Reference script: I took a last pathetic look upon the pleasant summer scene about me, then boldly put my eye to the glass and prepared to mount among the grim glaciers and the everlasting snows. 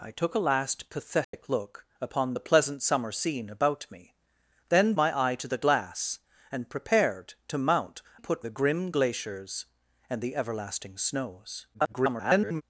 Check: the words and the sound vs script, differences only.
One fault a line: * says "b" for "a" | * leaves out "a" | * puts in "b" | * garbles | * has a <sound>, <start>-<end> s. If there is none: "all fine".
* has a dropout, 1.2-1.3 s
* leaves out "boldly put"
* says "put" for "among"
* garbles